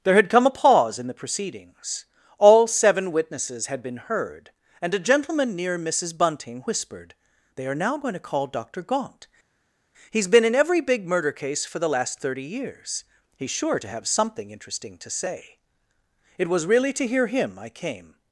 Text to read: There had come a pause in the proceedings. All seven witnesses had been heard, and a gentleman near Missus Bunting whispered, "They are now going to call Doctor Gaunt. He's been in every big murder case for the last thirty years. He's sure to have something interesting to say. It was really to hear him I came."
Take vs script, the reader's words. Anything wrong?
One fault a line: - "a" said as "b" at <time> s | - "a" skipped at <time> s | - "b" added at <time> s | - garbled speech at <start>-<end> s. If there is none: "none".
none